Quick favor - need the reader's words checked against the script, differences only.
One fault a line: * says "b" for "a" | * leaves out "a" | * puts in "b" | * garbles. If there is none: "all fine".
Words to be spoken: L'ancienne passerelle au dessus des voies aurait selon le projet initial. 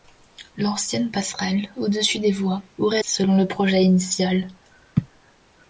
all fine